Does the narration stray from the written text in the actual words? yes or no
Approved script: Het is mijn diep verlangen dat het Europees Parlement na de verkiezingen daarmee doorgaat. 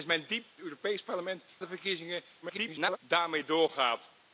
yes